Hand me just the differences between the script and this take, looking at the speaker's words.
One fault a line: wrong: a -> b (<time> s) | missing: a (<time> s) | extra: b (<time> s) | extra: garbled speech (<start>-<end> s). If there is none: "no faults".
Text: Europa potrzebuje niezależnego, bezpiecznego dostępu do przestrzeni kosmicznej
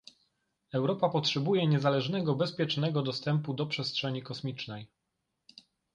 no faults